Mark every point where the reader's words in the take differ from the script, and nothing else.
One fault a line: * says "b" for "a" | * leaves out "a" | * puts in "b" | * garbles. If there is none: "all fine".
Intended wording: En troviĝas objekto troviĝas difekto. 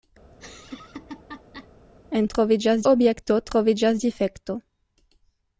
all fine